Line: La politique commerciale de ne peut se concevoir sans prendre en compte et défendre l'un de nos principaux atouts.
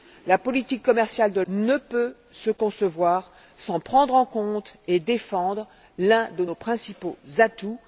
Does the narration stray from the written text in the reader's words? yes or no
no